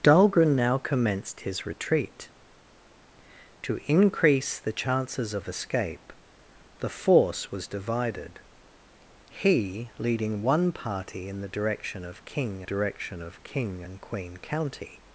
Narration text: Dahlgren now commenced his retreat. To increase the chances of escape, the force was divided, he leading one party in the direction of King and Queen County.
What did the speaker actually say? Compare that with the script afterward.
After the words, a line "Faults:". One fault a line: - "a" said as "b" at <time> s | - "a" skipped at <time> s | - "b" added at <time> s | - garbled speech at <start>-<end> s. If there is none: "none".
Dahlgren now commenced his retreat. To increase the chances of escape, the force was divided, he leading one party in the direction of King direction of King and Queen County.
Faults:
- "direction of King" added at 12.6 s